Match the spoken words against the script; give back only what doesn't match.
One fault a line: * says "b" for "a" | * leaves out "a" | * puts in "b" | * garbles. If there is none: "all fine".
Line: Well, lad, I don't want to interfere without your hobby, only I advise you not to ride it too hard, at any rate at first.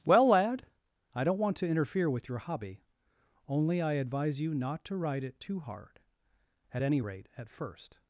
* says "with" for "without"